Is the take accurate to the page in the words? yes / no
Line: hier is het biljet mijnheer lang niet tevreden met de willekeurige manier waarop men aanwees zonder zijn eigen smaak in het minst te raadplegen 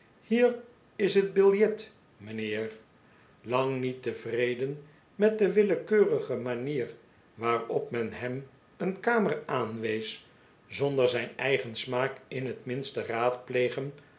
no